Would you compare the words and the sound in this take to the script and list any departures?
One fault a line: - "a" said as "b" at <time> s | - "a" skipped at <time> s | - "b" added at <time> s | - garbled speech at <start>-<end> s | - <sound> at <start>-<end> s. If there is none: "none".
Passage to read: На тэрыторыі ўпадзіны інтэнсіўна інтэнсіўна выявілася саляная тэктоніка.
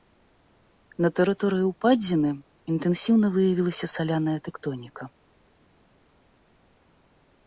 - "інтэнсіўна" skipped at 3.3 s